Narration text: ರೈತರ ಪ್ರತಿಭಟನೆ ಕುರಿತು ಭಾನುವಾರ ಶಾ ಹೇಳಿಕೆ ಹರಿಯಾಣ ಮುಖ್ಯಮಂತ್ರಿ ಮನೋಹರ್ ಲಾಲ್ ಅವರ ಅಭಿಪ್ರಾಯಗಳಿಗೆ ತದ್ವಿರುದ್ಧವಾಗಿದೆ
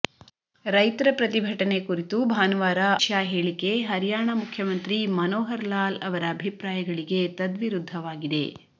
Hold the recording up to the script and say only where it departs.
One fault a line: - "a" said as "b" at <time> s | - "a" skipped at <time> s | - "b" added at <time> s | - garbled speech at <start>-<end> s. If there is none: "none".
none